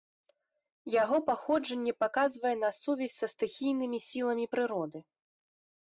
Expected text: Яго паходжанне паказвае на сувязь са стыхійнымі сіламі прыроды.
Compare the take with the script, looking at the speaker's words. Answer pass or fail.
pass